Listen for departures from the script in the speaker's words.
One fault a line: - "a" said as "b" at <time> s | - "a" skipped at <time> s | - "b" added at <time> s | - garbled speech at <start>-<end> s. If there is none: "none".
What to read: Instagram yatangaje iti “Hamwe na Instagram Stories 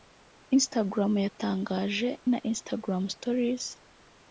- "iti Hamwe" skipped at 2.1 s